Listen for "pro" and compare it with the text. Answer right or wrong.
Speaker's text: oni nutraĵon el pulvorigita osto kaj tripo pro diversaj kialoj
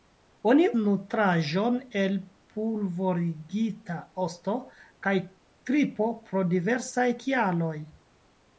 right